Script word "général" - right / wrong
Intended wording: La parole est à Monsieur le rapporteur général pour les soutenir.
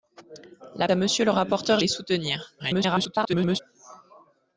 wrong